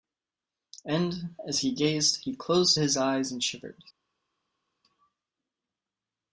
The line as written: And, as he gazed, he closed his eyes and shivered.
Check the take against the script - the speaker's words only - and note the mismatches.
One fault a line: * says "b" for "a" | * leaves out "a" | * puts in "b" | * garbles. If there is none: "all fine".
all fine